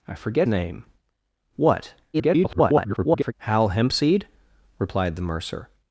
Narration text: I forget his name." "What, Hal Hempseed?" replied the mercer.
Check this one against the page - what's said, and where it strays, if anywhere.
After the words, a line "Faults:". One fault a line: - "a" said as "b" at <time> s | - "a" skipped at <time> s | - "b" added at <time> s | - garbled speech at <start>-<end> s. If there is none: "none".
I forget name." "What, [garbled] Hal Hempseed?" replied the mercer.
Faults:
- "his" skipped at 0.5 s
- garbled speech at 2.1-3.3 s